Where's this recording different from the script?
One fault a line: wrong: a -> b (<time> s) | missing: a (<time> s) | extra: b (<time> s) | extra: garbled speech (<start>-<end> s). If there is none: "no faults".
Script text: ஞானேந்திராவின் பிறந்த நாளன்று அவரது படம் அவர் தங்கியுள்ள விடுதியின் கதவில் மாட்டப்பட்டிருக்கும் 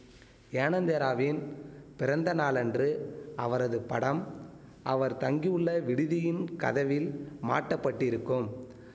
no faults